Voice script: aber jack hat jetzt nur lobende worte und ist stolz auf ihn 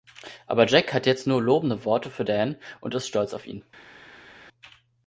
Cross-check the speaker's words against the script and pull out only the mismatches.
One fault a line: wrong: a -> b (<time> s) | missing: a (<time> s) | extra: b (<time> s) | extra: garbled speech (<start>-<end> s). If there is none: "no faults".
extra: für dan (2.1 s)